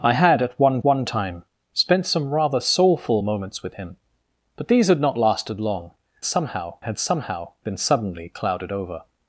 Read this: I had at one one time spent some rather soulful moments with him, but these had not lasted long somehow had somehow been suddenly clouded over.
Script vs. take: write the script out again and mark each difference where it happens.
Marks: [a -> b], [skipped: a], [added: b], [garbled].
I had at one one time spent some rather soulful moments with him, but these had not lasted long somehow had somehow been suddenly clouded over.